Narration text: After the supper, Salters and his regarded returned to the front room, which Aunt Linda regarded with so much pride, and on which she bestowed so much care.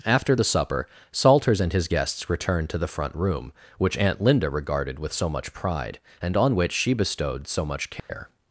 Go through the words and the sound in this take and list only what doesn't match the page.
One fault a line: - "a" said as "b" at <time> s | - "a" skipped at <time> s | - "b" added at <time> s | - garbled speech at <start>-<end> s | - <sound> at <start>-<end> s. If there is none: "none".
- "regarded" said as "guests" at 1.9 s
- dropout at 8.0-8.1 s